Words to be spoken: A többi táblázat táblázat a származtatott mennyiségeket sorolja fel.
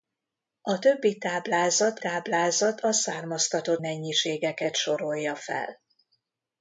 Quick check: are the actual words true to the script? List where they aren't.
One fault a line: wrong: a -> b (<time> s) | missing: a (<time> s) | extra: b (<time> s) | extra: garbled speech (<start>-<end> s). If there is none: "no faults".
no faults